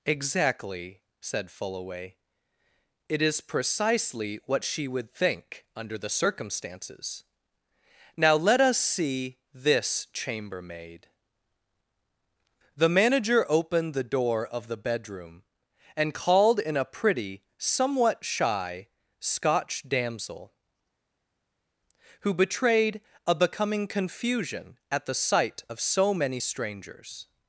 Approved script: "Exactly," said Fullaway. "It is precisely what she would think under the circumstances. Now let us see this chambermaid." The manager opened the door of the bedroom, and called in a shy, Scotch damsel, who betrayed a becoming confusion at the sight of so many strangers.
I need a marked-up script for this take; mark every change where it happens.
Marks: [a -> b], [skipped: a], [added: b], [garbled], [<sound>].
"Exactly," said Fullaway. "It is precisely what she would think under the circumstances. Now let us see this chambermaid." The manager opened the door of the bedroom, and called in a [added: pretty somewhat] shy, Scotch damsel, who betrayed a becoming confusion at the sight of so many strangers.